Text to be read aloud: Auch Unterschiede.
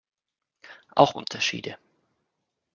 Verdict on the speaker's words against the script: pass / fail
pass